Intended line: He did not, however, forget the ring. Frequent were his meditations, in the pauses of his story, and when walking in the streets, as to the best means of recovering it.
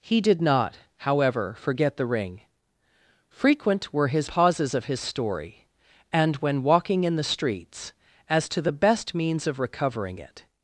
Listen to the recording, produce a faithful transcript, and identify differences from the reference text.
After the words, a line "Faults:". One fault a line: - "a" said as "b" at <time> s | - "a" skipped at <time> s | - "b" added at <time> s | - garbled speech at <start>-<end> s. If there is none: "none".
He did not, however, forget the ring. Frequent were his pauses of his story, and when walking in the streets, as to the best means of recovering it.
Faults:
- "meditations in the" skipped at 4.3 s